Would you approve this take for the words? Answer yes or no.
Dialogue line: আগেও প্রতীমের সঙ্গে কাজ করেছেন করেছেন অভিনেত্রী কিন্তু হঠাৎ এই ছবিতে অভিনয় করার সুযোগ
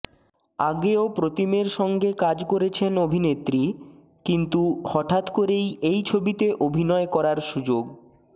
no